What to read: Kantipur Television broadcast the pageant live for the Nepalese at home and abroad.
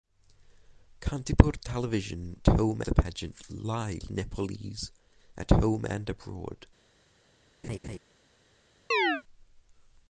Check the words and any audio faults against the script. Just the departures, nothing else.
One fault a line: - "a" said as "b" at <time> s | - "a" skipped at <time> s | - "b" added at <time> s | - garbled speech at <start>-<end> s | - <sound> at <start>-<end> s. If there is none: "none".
- "broadcast" said as "home" at 2.5 s
- "for" skipped at 4.0 s
- laugh at 7.6-8.0 s
- chirp at 8.9-9.2 s